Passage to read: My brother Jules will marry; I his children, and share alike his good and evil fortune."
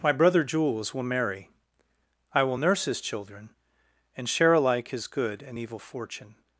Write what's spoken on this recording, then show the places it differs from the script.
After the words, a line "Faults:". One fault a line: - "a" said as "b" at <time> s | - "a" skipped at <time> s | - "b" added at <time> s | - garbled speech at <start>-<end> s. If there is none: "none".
My brother Jules will marry; I will nurse his children, and share alike his good and evil fortune."
Faults:
- "will nurse" added at 2.4 s